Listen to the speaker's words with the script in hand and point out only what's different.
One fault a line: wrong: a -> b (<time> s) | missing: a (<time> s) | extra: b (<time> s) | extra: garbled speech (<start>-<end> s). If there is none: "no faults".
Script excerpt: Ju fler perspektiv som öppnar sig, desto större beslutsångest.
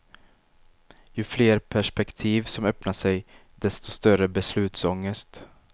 no faults